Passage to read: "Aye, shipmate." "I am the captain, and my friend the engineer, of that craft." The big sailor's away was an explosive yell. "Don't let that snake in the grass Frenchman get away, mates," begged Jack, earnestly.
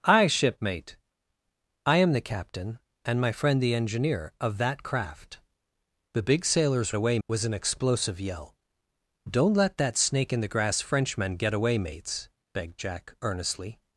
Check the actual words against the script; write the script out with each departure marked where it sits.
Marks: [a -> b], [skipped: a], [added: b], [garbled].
"Aye, shipmate." "I am the captain, and my friend the engineer, of that craft." The big sailor's away was an explosive yell. "Don't let that snake in the grass Frenchman get away, mates," begged Jack, earnestly.